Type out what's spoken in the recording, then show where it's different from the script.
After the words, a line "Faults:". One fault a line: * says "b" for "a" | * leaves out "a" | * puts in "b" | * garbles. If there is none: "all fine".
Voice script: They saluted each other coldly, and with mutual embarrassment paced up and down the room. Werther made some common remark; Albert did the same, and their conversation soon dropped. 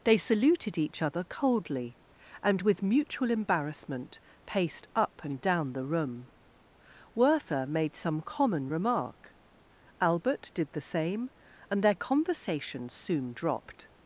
They saluted each other coldly, and with mutual embarrassment paced up and down the room. Werther made some common remark; Albert did the same, and their conversation soon dropped.
Faults:
all fine